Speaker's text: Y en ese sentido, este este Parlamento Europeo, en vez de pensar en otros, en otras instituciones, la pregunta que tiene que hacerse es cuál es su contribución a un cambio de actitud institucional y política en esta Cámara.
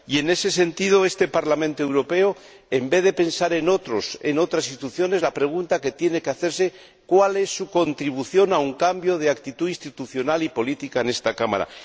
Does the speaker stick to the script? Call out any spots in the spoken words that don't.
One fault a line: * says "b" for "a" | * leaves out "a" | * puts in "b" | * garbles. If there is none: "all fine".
* leaves out "este"